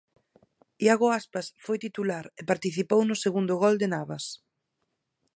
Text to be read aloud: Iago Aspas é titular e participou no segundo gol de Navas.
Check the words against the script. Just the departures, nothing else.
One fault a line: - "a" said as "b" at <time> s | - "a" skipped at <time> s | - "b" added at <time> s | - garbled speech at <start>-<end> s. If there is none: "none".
- "é" said as "foi" at 1.6 s